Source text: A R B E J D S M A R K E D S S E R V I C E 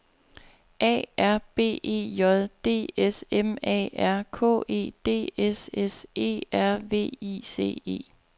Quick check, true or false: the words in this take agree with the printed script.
true